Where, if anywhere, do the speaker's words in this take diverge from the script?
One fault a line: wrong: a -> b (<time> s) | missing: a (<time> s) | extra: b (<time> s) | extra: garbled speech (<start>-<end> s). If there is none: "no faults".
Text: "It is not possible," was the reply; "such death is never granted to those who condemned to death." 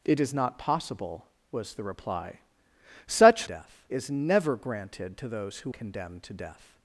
no faults